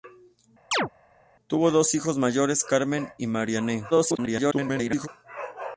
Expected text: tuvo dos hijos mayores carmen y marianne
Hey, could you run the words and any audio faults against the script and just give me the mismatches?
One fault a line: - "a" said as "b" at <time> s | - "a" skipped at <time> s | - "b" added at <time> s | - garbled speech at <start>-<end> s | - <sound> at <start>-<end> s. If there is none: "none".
- chirp at 0.7-0.9 s
- garbled speech at 3.9-5.1 s